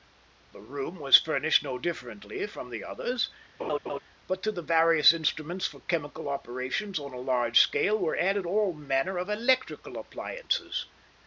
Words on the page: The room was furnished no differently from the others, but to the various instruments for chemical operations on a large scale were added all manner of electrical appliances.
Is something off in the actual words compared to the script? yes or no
no